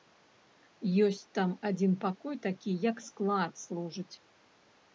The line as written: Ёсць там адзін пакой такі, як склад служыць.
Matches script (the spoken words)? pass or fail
pass